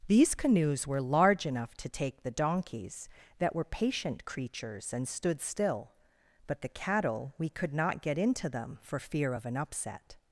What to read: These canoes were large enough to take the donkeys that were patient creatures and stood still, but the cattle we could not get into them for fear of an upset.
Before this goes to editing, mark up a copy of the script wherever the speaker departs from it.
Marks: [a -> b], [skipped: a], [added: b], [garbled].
These canoes were large enough to take the donkeys that were patient creatures and stood still, but the cattle we could not get into them for fear of an upset.